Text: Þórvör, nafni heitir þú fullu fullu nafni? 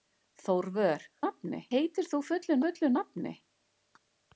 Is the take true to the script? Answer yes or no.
yes